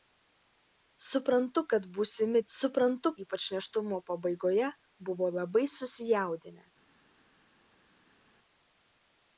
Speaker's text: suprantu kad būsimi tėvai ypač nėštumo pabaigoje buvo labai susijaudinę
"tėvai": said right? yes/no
no